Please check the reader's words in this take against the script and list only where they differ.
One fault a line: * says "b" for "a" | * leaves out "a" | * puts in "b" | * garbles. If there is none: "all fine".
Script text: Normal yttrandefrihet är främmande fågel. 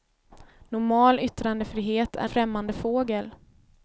all fine